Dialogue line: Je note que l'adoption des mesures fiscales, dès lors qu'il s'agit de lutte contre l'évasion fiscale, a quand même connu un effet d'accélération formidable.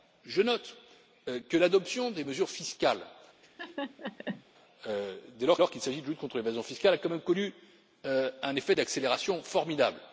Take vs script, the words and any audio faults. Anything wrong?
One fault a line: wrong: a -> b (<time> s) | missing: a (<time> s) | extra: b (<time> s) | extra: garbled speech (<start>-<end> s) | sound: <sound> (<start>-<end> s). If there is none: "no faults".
sound: laugh (3.4-4.4 s)
extra: lors (5.6 s)